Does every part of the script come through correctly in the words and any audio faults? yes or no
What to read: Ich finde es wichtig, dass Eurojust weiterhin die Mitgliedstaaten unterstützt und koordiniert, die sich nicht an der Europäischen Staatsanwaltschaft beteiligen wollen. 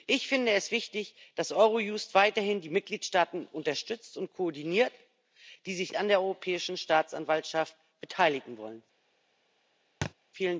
no